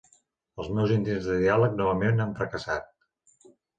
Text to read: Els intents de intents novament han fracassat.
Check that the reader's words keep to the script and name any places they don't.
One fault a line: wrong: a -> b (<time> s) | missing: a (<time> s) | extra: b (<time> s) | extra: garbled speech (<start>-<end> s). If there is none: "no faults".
extra: meus (0.8 s)
wrong: intents -> diàleg (1.4 s)